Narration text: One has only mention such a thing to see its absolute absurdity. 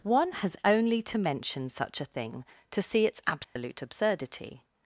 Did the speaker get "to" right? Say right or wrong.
right